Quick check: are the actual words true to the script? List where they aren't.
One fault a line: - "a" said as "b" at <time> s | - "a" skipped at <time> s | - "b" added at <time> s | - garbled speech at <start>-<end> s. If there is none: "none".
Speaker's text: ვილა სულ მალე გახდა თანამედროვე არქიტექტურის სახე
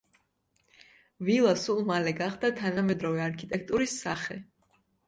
none